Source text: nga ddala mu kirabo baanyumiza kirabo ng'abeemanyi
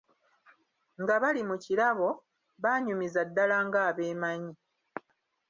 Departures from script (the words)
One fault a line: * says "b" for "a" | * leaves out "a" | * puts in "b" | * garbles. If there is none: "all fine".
* says "bali" for "ddala"
* says "ddala" for "kirabo"